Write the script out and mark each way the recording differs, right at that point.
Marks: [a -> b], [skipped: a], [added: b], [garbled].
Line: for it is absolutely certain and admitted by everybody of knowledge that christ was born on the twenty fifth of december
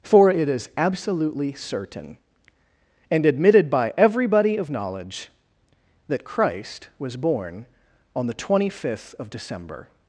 for it is absolutely certain and admitted by everybody of knowledge that christ was born on the twenty fifth of december